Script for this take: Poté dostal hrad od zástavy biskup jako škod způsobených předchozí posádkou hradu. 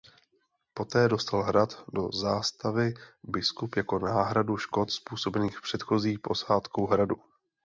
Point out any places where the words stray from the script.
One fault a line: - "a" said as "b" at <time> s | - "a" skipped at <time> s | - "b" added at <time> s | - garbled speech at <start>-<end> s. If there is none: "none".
- "od" said as "do" at 1.9 s
- "náhradu" added at 4.0 s